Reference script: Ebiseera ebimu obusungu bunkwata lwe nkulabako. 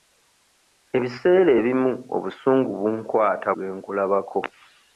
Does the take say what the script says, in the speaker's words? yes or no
yes